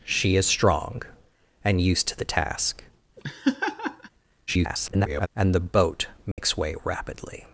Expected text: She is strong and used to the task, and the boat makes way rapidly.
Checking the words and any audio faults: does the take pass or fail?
fail